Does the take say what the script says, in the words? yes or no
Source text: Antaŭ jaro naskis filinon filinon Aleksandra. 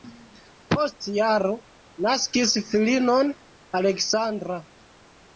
no